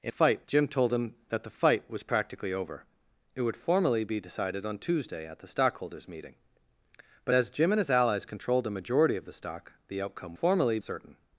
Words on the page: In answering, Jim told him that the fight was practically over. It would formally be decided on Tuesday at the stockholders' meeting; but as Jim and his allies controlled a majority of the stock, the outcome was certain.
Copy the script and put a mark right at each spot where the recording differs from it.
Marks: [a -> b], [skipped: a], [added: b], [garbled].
In [answering, -> fight] Jim told him that the fight was practically over. It would formally be decided on Tuesday at the stockholders' meeting; but as Jim and his allies controlled a majority of the stock, the outcome [was -> formally] certain.